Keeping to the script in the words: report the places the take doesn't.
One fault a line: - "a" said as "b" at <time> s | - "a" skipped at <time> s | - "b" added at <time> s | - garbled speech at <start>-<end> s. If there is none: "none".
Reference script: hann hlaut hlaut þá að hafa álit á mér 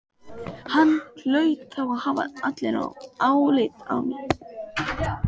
- "hlaut" skipped at 1.7 s